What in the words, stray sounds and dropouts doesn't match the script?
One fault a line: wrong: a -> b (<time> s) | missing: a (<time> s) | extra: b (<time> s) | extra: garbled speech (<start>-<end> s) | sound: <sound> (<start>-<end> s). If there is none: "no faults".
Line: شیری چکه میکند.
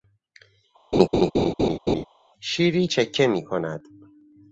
sound: laugh (0.9-2.1 s)